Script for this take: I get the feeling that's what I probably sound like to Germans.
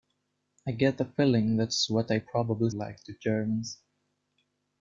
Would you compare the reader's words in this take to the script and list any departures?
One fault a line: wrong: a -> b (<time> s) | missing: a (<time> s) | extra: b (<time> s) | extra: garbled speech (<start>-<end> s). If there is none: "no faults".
missing: sound (2.7 s)